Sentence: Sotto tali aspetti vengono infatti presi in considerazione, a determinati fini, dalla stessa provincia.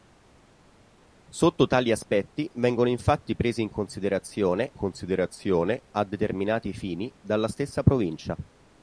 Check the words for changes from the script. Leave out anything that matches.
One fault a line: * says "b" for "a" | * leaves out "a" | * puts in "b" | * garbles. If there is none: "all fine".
* puts in "considerazione"